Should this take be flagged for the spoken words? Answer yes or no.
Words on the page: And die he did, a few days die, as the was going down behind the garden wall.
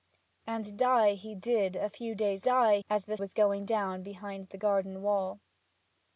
no